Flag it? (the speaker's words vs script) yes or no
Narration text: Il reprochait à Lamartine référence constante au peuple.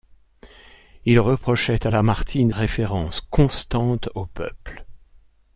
no